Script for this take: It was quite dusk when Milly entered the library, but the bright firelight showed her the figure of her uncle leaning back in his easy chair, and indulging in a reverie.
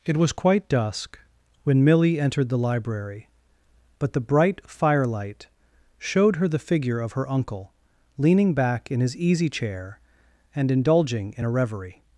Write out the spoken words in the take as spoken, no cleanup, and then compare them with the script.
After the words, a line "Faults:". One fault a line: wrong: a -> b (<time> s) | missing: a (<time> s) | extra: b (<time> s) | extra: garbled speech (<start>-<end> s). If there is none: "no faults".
It was quite dusk when Milly entered the library, but the bright firelight showed her the figure of her uncle leaning back in his easy chair, and indulging in a reverie.
Faults:
no faults